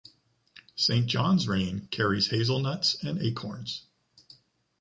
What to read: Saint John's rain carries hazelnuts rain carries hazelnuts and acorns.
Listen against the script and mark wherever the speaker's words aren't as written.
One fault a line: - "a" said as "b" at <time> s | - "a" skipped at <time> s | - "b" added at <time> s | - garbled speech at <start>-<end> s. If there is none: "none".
- "rain carries hazelnuts" skipped at 3.0 s